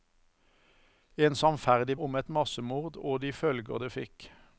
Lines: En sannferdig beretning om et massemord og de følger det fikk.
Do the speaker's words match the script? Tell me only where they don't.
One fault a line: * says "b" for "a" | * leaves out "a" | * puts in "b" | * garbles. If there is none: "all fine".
* leaves out "beretning"